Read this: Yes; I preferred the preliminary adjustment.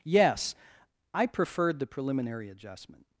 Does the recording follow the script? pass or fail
pass